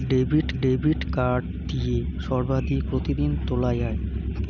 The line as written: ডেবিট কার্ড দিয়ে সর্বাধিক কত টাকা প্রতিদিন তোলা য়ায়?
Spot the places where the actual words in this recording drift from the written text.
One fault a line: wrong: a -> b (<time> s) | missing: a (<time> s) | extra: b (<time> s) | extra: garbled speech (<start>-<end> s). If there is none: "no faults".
extra: ডেবিট (0.6 s)
missing: কত টাকা (2.8 s)